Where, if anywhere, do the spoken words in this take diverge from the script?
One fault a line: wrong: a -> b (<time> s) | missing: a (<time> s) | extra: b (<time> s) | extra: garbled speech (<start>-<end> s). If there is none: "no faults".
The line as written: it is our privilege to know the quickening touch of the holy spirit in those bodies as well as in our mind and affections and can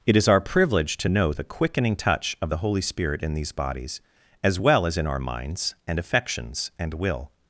wrong: those -> these (3.3 s)
wrong: mind -> minds (5.2 s)
wrong: can -> will (6.9 s)